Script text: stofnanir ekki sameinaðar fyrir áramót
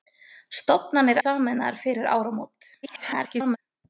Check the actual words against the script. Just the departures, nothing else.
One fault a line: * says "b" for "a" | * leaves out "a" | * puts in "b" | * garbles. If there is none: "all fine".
* leaves out "ekki"
* garbles